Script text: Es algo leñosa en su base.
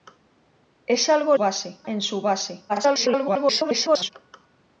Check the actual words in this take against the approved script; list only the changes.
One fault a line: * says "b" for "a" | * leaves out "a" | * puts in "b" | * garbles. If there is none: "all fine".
* says "base" for "leñosa"
* garbles